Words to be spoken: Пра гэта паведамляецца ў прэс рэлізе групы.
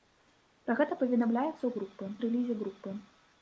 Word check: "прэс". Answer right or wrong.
wrong